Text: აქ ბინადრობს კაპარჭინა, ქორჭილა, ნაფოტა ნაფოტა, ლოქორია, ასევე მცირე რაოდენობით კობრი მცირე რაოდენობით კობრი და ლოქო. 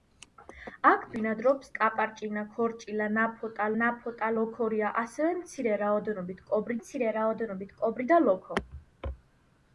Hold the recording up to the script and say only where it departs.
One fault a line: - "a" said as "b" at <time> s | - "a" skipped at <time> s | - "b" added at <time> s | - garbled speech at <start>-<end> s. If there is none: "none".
none